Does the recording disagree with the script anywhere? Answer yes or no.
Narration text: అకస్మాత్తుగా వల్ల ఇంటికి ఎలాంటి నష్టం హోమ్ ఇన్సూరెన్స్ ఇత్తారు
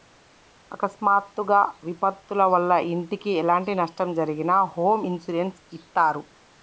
yes